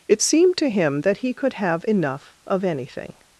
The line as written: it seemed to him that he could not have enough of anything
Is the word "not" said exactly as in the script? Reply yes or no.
no